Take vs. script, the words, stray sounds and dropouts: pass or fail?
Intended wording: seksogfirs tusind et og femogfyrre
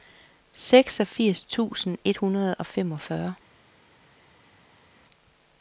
fail